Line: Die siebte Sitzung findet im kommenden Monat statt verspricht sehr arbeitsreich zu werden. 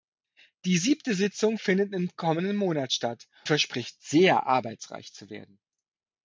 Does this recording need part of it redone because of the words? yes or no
no